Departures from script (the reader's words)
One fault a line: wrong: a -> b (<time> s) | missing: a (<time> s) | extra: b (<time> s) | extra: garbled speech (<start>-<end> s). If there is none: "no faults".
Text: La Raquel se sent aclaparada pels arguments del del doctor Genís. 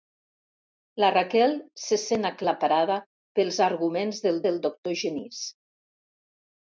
no faults